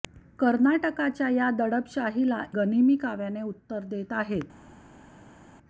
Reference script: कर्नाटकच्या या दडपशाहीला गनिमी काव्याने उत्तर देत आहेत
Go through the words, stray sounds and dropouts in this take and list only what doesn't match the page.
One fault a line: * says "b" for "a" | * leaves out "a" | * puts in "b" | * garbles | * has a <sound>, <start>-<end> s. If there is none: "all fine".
all fine